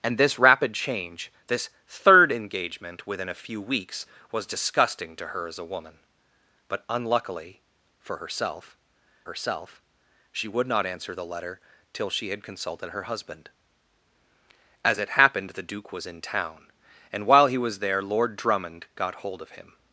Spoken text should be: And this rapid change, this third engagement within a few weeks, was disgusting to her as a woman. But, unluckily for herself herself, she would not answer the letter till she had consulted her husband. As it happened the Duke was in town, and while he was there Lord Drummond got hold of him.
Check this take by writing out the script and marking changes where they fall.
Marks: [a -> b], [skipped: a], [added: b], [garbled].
And this rapid change, this third engagement within a few weeks, was disgusting to her as a woman. But, unluckily for herself herself, she would not answer the letter till she had consulted her husband. As it happened the Duke was in town, and while he was there Lord Drummond got hold of him.